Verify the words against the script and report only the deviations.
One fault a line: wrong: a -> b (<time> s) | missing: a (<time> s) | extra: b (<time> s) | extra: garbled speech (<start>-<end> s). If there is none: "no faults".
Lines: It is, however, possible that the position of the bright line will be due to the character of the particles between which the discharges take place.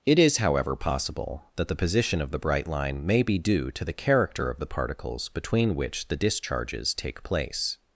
wrong: will -> may (3.0 s)